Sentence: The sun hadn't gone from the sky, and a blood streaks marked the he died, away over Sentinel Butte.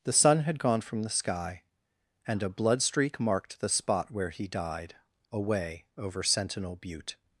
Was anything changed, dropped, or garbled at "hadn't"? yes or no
yes